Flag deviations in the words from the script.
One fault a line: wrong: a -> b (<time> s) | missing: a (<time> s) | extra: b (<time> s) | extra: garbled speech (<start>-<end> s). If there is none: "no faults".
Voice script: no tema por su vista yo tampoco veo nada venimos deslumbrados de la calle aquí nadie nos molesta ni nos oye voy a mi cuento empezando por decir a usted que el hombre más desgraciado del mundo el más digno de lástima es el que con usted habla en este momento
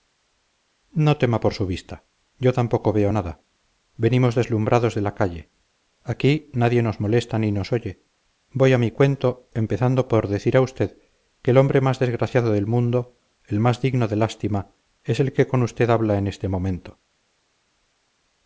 no faults